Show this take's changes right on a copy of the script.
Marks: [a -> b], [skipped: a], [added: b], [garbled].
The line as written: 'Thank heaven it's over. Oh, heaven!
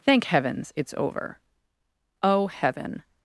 'Thank [heaven -> heavens] it's over. Oh, heaven!